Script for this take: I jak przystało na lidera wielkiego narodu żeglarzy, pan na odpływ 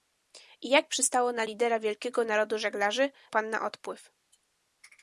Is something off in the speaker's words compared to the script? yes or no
no